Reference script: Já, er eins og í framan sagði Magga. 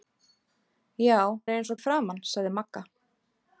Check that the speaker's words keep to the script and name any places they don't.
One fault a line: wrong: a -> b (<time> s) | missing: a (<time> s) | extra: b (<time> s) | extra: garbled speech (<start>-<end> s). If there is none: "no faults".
no faults